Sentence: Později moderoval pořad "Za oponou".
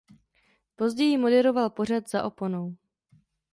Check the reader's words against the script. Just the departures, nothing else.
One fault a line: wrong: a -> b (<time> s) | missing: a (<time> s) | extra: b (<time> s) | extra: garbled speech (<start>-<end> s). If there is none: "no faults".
no faults